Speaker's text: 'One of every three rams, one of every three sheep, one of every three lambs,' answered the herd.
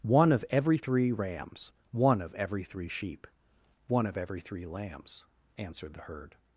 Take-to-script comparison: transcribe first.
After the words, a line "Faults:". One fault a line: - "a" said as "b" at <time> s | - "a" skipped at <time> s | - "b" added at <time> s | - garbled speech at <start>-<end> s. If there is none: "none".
'One of every three rams, one of every three sheep, one of every three lambs,' answered the herd.
Faults:
none